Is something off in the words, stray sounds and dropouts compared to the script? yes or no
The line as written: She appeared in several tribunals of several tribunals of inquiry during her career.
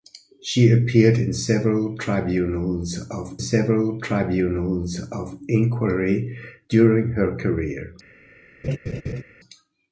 yes